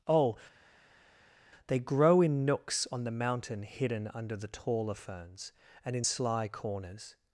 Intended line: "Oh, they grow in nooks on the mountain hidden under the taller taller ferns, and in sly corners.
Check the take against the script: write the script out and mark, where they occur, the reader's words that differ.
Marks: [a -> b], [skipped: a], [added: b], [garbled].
"Oh, they grow in nooks on the mountain hidden under the taller [skipped: taller] ferns, and in sly corners.